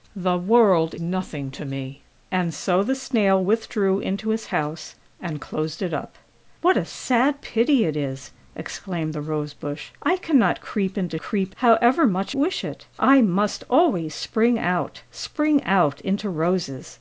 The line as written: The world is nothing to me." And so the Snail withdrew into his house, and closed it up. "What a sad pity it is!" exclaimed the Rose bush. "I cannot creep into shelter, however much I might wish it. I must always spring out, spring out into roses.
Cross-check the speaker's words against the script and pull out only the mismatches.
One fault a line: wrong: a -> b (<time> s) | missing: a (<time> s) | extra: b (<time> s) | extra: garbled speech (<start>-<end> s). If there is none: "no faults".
missing: is (0.9 s)
wrong: shelter -> creep (11.2 s)
missing: I might (12.3 s)